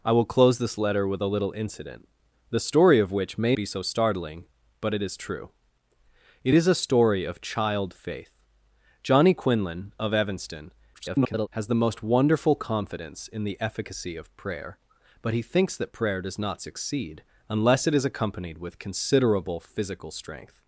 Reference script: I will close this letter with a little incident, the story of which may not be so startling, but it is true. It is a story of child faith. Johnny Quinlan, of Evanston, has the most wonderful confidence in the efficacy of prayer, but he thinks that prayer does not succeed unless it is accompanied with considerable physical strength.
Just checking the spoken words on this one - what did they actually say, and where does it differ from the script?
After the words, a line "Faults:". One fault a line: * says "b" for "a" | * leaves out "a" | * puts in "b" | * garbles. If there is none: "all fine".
I will close this letter with a little incident, the story of which may be so startling, but it is true. It is a story of child faith. Johnny Quinlan, of Evanston, [garbled] has the most wonderful confidence in the efficacy of prayer, but he thinks that prayer does not succeed unless it is accompanied with considerable physical strength.
Faults:
* leaves out "not"
* garbles